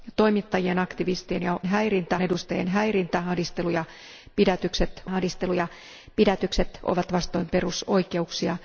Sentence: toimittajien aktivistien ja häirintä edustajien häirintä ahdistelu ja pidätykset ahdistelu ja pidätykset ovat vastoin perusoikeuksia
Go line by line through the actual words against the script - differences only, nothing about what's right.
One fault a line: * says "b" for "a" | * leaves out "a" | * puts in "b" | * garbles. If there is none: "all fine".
all fine